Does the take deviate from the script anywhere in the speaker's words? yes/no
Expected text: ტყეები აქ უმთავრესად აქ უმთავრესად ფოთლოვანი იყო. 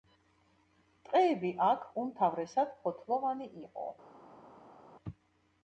yes